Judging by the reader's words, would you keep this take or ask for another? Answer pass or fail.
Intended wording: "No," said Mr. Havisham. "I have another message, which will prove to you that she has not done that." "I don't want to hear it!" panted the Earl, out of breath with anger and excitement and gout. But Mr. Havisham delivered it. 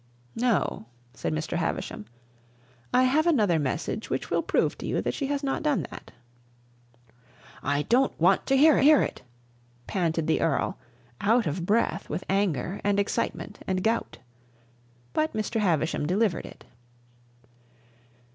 fail